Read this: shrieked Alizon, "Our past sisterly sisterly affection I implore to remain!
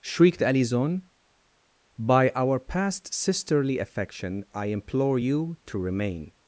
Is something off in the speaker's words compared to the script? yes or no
yes